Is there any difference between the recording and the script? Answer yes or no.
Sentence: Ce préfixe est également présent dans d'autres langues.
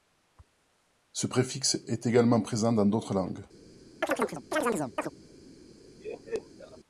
no